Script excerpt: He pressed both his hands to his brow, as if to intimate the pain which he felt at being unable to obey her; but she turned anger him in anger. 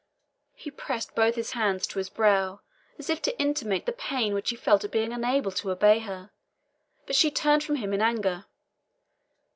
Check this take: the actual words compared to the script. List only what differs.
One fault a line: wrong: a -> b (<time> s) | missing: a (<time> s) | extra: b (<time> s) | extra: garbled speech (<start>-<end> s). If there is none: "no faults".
wrong: anger -> from (7.6 s)